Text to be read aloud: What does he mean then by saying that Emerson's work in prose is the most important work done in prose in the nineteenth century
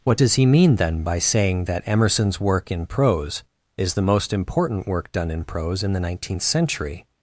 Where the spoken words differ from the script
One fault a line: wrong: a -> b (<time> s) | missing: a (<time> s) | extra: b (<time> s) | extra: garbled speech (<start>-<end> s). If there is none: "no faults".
no faults